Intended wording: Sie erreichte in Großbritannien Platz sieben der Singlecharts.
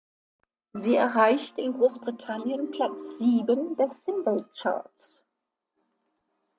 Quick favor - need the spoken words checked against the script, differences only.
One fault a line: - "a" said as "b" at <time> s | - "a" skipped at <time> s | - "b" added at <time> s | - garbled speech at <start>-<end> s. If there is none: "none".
none